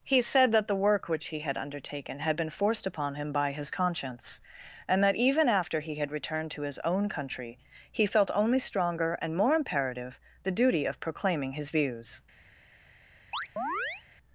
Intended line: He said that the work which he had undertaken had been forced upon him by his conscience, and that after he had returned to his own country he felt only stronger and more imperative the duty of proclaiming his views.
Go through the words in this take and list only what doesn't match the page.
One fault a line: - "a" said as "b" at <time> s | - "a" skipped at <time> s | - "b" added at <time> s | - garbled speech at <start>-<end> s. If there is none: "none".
- "even" added at 5.2 s